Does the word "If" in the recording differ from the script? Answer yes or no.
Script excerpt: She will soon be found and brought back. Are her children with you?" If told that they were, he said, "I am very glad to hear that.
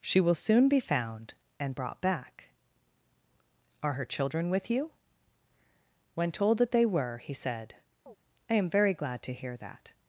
yes